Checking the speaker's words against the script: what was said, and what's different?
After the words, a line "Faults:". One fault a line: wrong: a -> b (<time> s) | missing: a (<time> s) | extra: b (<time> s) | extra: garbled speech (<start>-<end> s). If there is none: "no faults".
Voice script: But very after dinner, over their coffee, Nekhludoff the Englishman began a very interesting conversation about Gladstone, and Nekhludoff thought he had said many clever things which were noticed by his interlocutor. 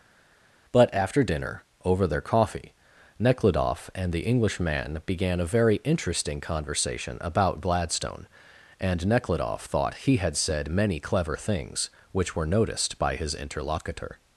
But after dinner, over their coffee, Nekhludoff and the Englishman began a very interesting conversation about Gladstone, and Nekhludoff thought he had said many clever things which were noticed by his interlocutor.
Faults:
missing: very (0.9 s)
extra: and (4.0 s)